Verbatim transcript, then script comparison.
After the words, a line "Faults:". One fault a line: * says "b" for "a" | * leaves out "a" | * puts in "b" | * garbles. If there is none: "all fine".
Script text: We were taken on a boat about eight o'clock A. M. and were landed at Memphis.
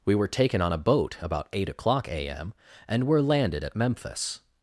We were taken on a boat about eight o'clock A. M. and were landed at Memphis.
Faults:
all fine